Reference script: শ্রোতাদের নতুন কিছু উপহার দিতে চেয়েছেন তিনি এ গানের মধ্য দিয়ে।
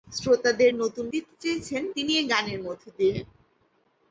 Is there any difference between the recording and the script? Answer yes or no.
yes